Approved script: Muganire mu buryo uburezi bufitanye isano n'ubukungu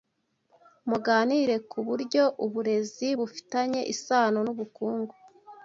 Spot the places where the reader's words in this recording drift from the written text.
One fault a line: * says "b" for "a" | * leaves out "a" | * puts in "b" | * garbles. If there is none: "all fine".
* says "ku" for "mu"